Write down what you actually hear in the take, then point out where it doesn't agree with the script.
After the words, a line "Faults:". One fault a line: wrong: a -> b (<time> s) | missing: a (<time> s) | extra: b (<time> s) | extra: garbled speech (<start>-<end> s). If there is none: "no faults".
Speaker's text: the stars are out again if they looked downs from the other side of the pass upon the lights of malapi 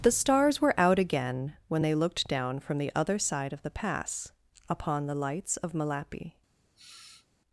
the stars were out again when they looked down from the other side of the pass upon the lights of malapi
Faults:
wrong: are -> were (0.6 s)
wrong: if -> when (1.7 s)
wrong: downs -> down (2.3 s)